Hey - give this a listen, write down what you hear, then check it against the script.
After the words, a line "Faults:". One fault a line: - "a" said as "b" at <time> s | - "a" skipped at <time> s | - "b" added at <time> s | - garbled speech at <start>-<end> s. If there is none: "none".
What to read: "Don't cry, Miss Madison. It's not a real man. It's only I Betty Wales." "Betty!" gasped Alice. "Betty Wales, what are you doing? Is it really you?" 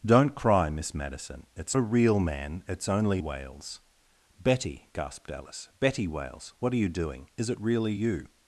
"Don't cry, Miss Madison. It's a real man. It's only Wales." "Betty!" gasped Alice. "Betty Wales, what are you doing? Is it really you?"
Faults:
- "not" skipped at 1.8 s
- "I Betty" skipped at 3.2 s